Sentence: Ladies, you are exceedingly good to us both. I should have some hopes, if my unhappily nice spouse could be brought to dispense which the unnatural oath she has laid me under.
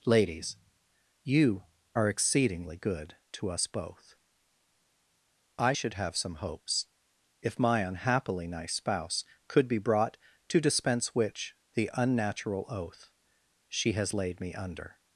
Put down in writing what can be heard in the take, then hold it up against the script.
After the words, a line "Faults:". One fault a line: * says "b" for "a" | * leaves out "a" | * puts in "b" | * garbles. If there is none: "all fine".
Ladies, you are exceedingly good to us both. I should have some hopes, if my unhappily nice spouse could be brought to dispense which the unnatural oath she has laid me under.
Faults:
all fine